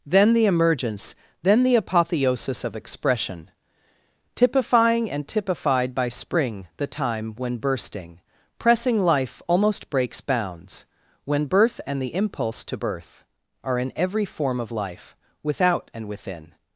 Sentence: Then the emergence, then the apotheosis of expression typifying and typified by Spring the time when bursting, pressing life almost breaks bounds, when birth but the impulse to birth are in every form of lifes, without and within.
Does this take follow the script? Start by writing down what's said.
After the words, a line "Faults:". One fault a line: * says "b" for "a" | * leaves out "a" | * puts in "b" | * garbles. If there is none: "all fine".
Then the emergence, then the apotheosis of expression typifying and typified by Spring the time when bursting, pressing life almost breaks bounds, when birth and the impulse to birth are in every form of life, without and within.
Faults:
* says "and" for "but"
* says "life" for "lifes"